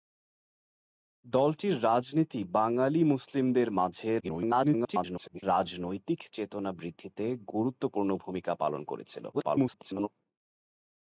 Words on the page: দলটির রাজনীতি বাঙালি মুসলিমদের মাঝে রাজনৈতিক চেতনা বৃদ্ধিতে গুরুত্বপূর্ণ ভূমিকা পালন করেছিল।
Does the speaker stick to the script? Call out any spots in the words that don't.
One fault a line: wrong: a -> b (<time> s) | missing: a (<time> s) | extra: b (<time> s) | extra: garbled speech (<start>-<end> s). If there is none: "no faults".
extra: garbled speech (4.2-5.4 s)
extra: garbled speech (9.3-10.1 s)